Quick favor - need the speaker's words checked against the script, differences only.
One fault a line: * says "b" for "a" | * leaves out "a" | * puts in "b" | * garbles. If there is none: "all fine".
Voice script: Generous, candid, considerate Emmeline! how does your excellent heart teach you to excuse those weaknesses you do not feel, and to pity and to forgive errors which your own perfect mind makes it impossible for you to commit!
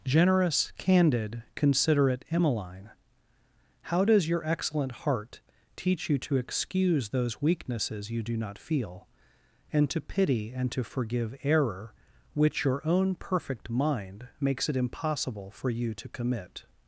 * says "error" for "errors"